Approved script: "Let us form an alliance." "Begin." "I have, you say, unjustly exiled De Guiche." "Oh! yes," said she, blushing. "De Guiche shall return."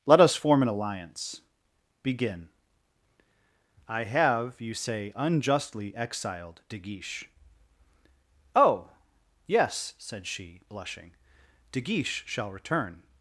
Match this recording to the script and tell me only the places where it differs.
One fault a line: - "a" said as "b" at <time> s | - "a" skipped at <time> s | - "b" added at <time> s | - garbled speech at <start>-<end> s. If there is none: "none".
none